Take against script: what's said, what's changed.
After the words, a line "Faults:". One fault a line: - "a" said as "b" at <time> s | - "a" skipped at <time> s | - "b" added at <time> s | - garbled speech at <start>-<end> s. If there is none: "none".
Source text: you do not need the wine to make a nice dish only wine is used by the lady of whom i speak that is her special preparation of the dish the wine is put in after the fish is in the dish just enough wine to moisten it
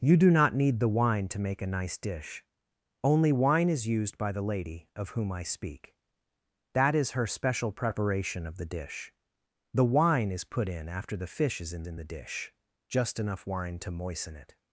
you do not need the wine to make a nice dish only wine is used by the lady of whom i speak that is her special preparation of the dish the wine is put in after the fish is in in the dish just enough wine to moisten it
Faults:
- "in" added at 11.8 s